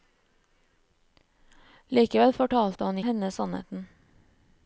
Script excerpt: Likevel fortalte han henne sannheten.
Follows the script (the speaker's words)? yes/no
yes